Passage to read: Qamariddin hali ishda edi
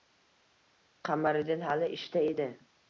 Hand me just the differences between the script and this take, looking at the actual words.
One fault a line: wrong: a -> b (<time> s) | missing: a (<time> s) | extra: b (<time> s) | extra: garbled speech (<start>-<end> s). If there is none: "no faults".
no faults